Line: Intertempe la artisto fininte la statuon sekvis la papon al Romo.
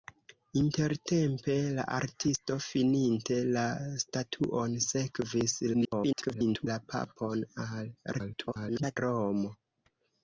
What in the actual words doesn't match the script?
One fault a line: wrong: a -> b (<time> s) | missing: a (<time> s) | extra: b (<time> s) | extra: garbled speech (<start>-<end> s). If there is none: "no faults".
extra: garbled speech (5.7-6.7 s)
extra: garbled speech (8.1-9.0 s)